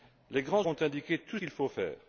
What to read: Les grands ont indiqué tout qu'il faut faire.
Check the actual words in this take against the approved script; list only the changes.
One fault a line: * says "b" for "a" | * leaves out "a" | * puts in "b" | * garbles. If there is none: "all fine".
all fine